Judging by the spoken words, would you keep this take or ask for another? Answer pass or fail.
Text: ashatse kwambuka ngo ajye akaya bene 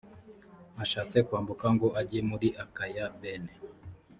fail